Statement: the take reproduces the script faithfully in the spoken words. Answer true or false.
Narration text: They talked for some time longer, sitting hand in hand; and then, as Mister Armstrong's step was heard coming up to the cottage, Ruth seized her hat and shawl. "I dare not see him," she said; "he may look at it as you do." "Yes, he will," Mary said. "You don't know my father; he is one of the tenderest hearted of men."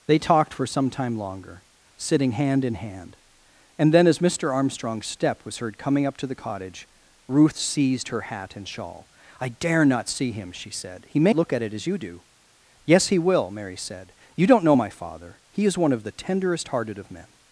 true